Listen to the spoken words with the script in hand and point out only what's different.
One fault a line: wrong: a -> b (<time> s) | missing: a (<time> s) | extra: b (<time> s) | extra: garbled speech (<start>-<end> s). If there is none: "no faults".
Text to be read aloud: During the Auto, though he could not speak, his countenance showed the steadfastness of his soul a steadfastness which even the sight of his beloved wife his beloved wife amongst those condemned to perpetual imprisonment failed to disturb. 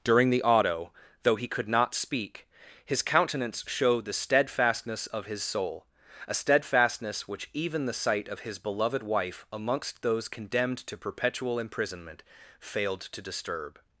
missing: his beloved wife (9.4 s)